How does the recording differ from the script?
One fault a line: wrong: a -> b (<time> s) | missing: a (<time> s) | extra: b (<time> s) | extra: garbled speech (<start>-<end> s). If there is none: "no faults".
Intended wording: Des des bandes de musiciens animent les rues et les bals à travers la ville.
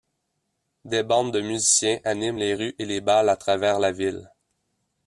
missing: des (1.0 s)